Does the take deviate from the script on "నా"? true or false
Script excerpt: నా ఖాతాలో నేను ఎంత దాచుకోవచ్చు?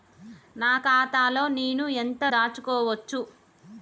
false